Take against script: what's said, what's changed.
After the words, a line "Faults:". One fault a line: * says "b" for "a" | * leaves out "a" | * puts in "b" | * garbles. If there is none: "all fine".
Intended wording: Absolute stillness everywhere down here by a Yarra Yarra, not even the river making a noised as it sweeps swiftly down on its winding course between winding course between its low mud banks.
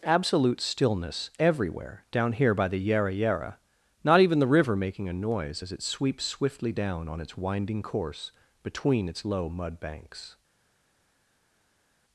Absolute stillness everywhere down here by the Yarra Yarra, not even the river making a noise as it sweeps swiftly down on its winding course between its low mud banks.
Faults:
* says "the" for "a"
* says "noise" for "noised"
* leaves out "winding course between"